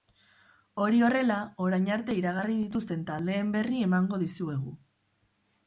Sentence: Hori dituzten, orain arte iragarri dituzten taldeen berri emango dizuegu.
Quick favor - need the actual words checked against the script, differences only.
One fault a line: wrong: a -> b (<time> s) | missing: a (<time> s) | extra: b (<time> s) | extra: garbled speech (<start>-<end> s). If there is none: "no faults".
wrong: dituzten -> horrela (1.1 s)